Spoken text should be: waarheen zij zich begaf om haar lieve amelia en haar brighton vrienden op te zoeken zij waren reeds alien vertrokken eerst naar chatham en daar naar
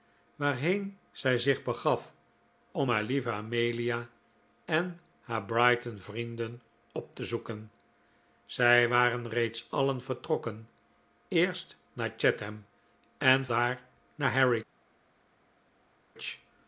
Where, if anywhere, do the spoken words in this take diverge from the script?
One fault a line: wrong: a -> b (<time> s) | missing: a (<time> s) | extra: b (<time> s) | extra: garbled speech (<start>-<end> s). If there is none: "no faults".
no faults